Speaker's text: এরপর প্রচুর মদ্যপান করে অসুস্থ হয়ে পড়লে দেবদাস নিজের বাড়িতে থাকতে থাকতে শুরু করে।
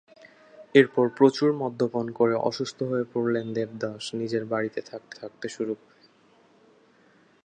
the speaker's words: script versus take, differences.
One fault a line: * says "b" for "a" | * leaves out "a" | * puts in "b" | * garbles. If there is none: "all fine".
all fine